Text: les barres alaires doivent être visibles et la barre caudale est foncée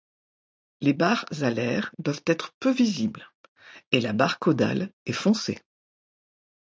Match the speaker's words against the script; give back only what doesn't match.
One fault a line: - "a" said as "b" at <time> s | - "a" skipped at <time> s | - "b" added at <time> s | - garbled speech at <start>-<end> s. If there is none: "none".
- "peu" added at 2.6 s